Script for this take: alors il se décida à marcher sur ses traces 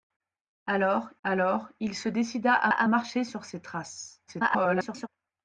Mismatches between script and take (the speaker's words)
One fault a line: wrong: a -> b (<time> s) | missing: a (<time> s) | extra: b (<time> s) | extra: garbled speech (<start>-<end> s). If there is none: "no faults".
extra: alors (1.2 s)
extra: à (2.7 s)
extra: garbled speech (4.3-5.1 s)